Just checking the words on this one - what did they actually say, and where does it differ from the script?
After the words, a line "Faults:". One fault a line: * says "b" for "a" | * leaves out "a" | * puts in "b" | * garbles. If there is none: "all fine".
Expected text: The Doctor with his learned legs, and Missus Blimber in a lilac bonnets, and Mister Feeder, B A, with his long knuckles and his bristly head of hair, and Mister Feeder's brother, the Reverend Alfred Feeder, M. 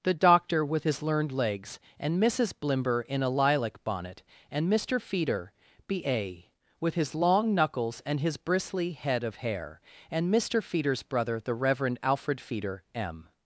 The Doctor with his learned legs, and Missus Blimber in a lilac bonnet, and Mister Feeder, B A, with his long knuckles and his bristly head of hair, and Mister Feeder's brother, the Reverend Alfred Feeder, M.
Faults:
* says "bonnet" for "bonnets"